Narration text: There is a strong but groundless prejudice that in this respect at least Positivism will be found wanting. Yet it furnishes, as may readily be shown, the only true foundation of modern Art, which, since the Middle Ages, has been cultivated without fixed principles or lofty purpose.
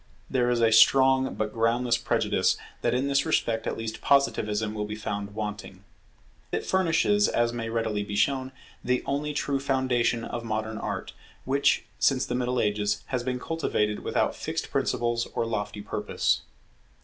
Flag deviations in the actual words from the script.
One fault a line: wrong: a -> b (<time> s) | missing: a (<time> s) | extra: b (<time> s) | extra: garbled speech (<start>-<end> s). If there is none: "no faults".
missing: Yet (5.8 s)